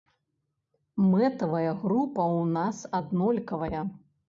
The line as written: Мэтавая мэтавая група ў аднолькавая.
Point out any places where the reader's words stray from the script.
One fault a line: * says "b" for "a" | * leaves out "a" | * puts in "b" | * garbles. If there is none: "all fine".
* leaves out "мэтавая"
* puts in "нас"